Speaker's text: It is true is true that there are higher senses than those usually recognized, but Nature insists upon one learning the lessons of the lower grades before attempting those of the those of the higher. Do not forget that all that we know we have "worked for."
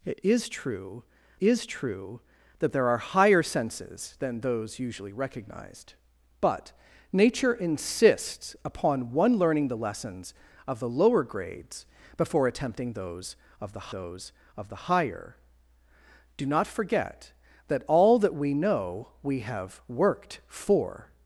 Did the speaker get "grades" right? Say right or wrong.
right